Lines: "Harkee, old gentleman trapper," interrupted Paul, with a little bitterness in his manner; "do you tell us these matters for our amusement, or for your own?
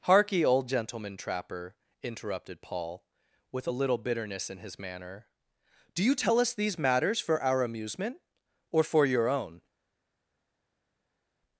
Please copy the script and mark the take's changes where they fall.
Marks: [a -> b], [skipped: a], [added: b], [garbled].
"Harkee, old gentleman trapper," interrupted Paul, with a little bitterness in his manner; "do you tell us these matters for our amusement, or for your own?